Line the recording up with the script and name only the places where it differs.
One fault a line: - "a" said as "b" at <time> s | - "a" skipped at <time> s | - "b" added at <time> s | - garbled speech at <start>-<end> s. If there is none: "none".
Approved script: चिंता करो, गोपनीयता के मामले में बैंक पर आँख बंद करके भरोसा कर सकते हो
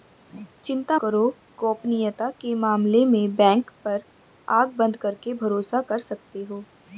none